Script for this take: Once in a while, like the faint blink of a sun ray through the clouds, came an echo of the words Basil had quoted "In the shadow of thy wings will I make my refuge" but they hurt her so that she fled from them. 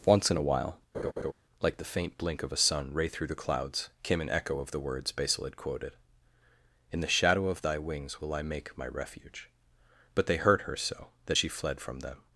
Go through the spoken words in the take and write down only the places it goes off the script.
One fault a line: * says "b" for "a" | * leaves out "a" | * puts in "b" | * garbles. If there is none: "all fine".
all fine